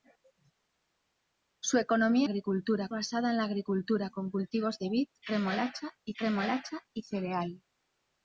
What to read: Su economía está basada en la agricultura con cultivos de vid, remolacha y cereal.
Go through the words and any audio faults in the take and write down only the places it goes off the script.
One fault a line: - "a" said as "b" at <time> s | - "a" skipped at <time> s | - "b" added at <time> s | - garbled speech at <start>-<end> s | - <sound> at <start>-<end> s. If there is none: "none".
- "está" said as "agricultura" at 2.2 s
- "remolacha y" added at 6.2 s